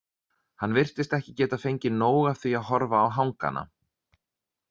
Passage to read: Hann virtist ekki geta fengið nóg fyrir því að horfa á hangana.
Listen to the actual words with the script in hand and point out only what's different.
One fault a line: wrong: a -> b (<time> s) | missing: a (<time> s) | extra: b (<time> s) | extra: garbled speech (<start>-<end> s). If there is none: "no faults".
wrong: fyrir -> af (2.3 s)